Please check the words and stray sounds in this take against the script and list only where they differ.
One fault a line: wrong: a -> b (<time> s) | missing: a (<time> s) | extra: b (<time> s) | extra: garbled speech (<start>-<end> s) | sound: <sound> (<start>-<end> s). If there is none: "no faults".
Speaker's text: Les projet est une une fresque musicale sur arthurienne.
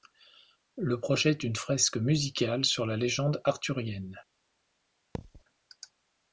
wrong: Les -> Le (0.8 s)
missing: une (1.6 s)
extra: la légende (2.9 s)
sound: thud (5.1-5.4 s)